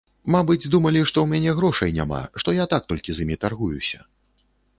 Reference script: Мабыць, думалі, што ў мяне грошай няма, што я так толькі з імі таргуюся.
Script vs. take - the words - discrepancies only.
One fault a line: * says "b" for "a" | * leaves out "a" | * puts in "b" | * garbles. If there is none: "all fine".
all fine